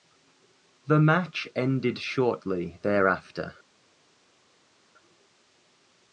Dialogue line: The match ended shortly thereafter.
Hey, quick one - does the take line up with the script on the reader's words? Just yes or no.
yes